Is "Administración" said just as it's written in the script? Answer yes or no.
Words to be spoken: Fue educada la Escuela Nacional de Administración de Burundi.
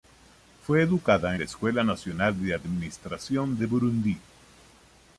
yes